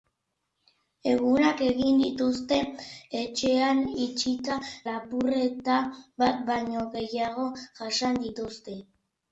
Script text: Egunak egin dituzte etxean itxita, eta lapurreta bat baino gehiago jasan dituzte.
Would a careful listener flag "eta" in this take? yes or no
yes